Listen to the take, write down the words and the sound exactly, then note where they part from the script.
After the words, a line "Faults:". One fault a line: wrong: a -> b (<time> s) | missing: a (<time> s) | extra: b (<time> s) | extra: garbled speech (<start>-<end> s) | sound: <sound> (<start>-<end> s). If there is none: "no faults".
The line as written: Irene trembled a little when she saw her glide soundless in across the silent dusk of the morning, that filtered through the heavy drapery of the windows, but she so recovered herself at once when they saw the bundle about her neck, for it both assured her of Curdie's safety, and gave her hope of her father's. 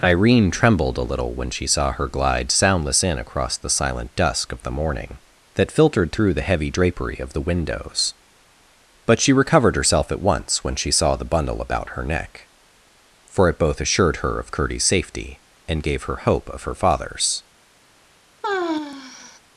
Irene trembled a little when she saw her glide soundless in across the silent dusk of the morning, that filtered through the heavy drapery of the windows, but she recovered herself at once when she saw the bundle about her neck, for it both assured her of Curdie's safety, and gave her hope of her father's.
Faults:
missing: so (9.3 s)
wrong: they -> she (10.8 s)
sound: sigh (18.4-19.4 s)